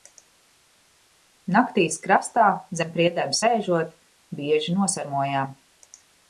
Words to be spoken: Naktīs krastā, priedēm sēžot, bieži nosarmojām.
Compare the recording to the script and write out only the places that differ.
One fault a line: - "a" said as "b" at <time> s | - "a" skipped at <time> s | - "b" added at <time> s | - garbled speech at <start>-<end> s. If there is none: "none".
- "zem" added at 2.8 s